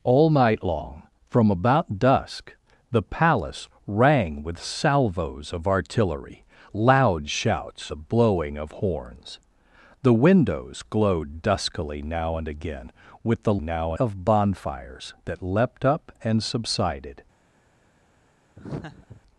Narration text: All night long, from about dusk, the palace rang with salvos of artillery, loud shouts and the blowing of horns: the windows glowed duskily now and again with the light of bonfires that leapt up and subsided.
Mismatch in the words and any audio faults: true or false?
true